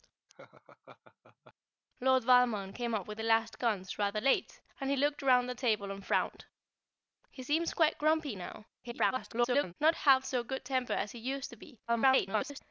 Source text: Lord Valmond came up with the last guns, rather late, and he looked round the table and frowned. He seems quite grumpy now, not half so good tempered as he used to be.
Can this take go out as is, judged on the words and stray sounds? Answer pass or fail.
fail